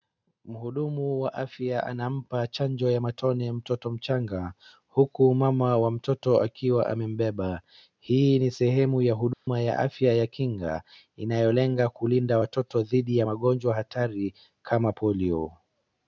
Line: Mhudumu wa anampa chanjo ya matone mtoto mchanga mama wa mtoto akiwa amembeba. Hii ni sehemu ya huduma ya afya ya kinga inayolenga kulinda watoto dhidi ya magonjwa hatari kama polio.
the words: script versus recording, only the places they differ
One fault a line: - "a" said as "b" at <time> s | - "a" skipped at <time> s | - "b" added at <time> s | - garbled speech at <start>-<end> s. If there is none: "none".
- "afya" added at 1.3 s
- "huku" added at 4.9 s